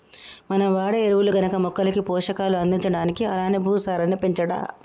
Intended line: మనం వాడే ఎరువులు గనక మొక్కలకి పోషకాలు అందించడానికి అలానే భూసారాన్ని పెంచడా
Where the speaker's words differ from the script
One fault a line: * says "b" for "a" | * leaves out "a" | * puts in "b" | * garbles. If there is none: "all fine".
all fine